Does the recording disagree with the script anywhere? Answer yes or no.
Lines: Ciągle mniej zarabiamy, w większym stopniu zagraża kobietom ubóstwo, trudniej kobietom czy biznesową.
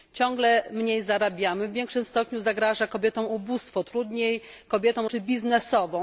no